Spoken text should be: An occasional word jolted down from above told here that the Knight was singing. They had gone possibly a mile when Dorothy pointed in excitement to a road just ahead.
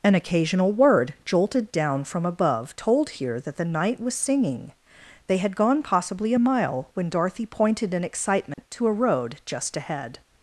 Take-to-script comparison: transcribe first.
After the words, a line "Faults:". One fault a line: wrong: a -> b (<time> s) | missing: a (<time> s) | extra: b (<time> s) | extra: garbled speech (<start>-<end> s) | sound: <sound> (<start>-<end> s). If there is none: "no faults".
An occasional word jolted down from above told here that the Knight was singing. They had gone possibly a mile when Dorothy pointed in excitement to a road just ahead.
Faults:
sound: dropout (8.5-8.6 s)